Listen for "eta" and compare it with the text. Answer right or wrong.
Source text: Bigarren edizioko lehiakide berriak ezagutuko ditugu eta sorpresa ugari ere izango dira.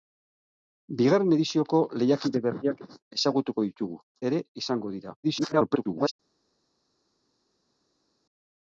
wrong